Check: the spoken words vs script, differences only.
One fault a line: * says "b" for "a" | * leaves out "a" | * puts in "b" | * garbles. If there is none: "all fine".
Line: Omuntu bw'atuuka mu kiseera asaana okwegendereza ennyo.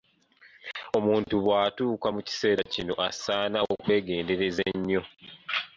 * puts in "kino"